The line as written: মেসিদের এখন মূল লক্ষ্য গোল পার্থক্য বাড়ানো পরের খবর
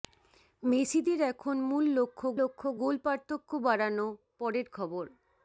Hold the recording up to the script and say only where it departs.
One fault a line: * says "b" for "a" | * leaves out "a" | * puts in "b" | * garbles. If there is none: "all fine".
* puts in "লক্ষ্য"